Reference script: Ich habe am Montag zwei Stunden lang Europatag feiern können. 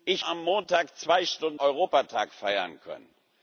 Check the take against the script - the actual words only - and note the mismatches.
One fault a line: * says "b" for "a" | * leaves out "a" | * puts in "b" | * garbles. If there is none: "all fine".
* leaves out "habe"
* leaves out "lang"